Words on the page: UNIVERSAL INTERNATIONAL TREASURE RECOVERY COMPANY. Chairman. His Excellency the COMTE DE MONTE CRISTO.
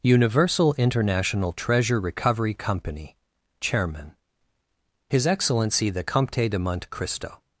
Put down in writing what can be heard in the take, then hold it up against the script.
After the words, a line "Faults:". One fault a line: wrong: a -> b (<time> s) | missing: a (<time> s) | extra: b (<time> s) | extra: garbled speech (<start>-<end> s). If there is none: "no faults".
UNIVERSAL INTERNATIONAL TREASURE RECOVERY COMPANY. Chairman. His Excellency the COMTE DE MONTE CRISTO.
Faults:
no faults